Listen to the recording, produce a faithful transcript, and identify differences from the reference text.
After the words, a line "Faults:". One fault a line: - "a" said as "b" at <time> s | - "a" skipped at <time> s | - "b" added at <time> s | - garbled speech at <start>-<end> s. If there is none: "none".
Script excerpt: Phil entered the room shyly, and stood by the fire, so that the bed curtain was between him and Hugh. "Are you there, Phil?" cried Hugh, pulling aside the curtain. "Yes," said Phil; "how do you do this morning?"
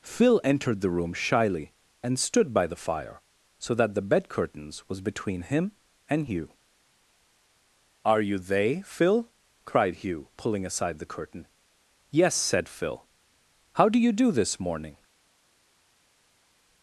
Phil entered the room shyly, and stood by the fire, so that the bed curtains was between him and Hugh. "Are you they, Phil?" cried Hugh, pulling aside the curtain. "Yes," said Phil; "how do you do this morning?"
Faults:
- "curtain" said as "curtains" at 4.3 s
- "there" said as "they" at 8.4 s